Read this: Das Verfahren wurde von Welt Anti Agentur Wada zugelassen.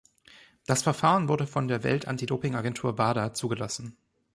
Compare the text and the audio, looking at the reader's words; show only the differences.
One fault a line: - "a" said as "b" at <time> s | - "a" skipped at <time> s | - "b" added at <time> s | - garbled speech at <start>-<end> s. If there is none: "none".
- "der" added at 1.7 s
- "Doping" added at 2.2 s